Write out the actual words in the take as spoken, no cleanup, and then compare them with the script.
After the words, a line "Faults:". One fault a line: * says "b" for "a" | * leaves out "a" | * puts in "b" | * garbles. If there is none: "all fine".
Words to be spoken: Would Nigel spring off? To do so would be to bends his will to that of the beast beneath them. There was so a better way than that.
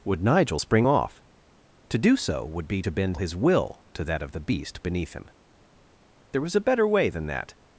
Would Nigel spring off? To do so would be to bend his will to that of the beast beneath him. There was a better way than that.
Faults:
* says "bend" for "bends"
* says "him" for "them"
* leaves out "so"